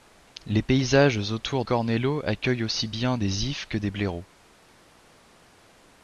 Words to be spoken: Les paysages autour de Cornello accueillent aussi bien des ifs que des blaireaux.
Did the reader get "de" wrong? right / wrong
wrong